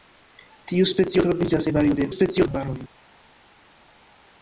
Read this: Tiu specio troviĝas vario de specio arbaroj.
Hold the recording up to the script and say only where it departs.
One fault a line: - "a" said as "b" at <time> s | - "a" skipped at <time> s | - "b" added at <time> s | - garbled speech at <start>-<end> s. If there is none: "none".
none